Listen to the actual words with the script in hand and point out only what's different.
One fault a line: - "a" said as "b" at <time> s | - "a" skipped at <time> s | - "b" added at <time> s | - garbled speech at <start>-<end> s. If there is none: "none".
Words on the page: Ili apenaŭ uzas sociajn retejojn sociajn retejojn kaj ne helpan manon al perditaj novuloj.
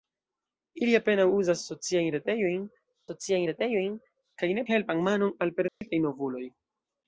none